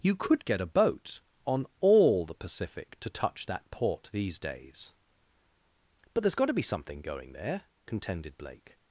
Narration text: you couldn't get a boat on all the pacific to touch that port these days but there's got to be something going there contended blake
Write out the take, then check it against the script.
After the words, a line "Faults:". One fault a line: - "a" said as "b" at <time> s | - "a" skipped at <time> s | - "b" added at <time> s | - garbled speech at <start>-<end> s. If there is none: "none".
you could get a boat on all the pacific to touch that port these days but there's got to be something going there contended blake
Faults:
- "couldn't" said as "could" at 0.1 s